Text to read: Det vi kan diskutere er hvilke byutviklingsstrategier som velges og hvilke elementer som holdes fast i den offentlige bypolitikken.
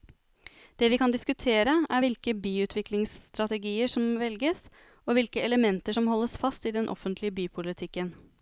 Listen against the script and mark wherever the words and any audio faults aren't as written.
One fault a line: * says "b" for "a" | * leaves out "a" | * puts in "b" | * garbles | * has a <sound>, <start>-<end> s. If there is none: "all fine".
all fine